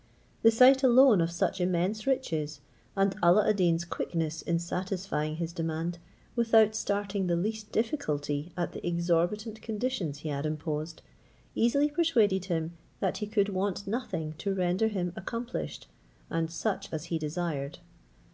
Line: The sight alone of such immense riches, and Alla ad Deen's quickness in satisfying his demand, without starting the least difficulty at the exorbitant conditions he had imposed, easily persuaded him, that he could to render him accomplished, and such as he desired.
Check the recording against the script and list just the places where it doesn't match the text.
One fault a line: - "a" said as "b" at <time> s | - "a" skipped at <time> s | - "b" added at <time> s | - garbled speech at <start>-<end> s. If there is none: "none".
- "want nothing" added at 13.5 s